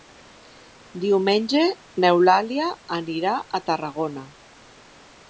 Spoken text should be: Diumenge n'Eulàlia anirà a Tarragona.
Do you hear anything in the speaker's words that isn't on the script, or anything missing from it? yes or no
no